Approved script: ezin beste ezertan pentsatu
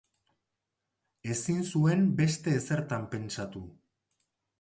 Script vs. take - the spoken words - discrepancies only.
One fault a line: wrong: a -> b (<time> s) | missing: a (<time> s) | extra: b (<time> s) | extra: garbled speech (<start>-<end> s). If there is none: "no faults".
extra: zuen (1.7 s)